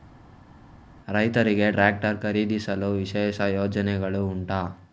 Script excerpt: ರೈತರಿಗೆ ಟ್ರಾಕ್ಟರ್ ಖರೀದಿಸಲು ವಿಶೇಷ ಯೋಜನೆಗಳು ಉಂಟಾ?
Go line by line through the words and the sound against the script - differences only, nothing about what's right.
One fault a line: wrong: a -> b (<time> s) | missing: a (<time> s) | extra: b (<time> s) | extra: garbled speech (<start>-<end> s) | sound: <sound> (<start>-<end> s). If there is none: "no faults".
no faults